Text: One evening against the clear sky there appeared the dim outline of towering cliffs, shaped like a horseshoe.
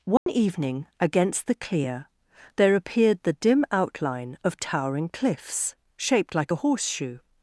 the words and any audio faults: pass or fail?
fail